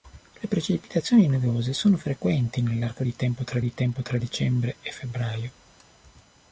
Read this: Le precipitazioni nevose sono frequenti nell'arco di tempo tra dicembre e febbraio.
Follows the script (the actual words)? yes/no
no